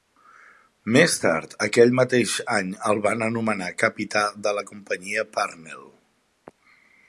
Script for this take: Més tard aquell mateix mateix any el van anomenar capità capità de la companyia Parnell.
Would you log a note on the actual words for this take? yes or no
yes